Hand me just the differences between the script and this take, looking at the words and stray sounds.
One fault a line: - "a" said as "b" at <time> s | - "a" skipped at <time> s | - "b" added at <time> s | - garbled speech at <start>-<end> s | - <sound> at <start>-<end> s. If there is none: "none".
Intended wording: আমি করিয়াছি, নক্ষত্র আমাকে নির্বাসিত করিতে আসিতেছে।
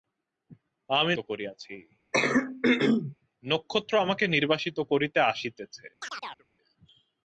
- throat clearing at 2.1-3.2 s
- chirp at 6.0-6.5 s